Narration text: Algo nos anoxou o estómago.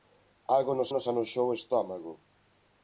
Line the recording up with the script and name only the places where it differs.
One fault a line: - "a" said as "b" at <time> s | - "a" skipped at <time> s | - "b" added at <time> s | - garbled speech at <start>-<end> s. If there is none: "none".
- "nos" added at 0.9 s